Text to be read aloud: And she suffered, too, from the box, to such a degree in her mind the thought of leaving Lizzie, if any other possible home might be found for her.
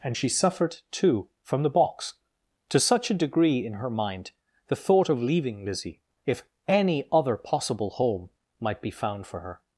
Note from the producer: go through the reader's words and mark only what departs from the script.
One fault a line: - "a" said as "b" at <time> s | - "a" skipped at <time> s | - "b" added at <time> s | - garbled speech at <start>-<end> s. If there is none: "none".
none